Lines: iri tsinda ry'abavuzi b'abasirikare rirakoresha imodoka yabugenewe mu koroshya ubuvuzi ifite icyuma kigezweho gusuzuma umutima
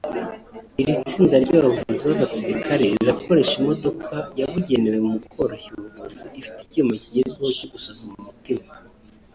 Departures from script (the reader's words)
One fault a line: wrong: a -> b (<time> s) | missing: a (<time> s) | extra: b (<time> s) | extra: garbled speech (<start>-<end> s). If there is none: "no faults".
extra: cyo (7.6 s)